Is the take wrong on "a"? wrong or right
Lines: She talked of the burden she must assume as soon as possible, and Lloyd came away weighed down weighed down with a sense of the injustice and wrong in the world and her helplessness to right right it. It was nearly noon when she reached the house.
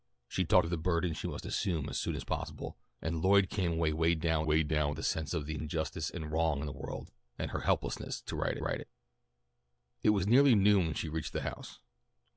right